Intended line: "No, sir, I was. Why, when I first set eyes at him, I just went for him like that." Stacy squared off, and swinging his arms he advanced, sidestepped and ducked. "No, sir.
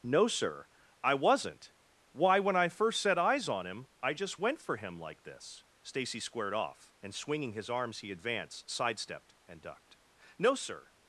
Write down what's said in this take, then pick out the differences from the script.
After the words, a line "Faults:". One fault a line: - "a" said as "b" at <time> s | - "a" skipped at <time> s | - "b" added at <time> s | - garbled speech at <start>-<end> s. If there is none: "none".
"No, sir, I wasn't. Why, when I first set eyes on him, I just went for him like this." Stacy squared off, and swinging his arms he advanced, sidestepped and ducked. "No, sir.
Faults:
- "was" said as "wasn't" at 1.1 s
- "at" said as "on" at 3.5 s
- "that" said as "this" at 5.2 s